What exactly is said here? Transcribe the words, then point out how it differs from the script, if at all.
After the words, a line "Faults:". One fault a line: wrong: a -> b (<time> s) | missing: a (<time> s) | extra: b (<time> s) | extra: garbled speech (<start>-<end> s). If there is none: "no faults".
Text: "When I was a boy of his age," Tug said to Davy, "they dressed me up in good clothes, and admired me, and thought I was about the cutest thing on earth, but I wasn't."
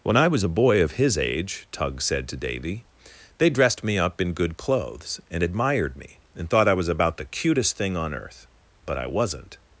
"When I was a boy of his age," Tug said to Davy, "they dressed me up in good clothes, and admired me, and thought I was about the cutest thing on earth, but I wasn't."
Faults:
no faults